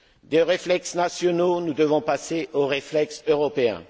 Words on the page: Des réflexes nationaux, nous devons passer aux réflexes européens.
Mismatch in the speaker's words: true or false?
false